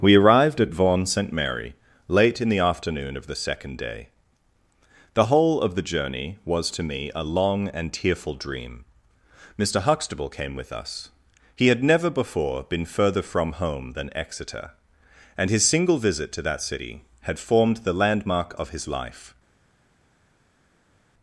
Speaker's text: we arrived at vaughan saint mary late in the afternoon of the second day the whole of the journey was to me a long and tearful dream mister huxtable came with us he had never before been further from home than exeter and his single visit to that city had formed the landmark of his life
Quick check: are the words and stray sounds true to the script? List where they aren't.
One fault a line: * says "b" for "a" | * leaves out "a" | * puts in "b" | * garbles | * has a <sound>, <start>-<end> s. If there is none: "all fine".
all fine